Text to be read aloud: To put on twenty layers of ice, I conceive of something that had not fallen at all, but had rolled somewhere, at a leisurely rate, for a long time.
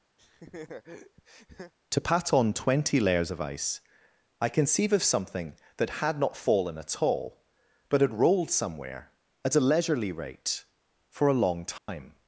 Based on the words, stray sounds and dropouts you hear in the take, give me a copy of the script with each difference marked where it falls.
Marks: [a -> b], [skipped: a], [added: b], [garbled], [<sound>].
[laugh] To [put -> pat] on twenty layers of ice, I conceive of something that had not fallen at all, but had rolled somewhere, at a leisurely rate, for a long time. [dropout]